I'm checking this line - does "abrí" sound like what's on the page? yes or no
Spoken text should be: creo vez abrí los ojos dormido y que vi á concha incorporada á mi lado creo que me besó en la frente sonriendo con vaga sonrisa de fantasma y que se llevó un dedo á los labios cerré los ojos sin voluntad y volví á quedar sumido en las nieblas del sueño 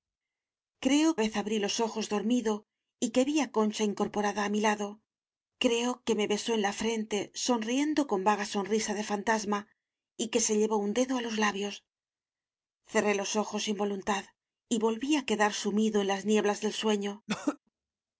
yes